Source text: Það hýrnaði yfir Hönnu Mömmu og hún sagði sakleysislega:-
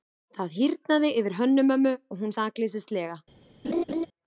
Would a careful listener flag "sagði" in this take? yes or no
yes